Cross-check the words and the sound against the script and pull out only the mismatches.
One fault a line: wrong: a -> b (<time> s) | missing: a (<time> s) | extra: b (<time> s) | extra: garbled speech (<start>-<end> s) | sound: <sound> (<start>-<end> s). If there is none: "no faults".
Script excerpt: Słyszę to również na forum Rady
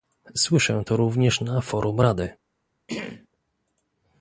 sound: throat clearing (2.9-3.3 s)